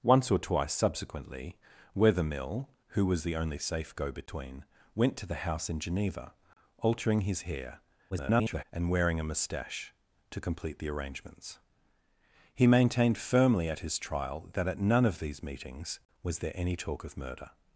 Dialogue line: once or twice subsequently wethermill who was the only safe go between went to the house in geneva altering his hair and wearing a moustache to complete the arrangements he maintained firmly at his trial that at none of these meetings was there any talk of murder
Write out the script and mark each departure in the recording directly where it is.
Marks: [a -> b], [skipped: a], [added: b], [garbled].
once or twice subsequently wethermill who was the only safe go between went to the house in geneva altering his hair [garbled] and wearing a moustache to complete the arrangements he maintained firmly at his trial that at none of these meetings was there any talk of murder